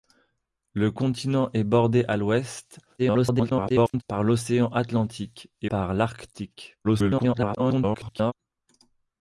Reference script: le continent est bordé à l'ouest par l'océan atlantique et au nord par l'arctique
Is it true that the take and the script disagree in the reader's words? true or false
true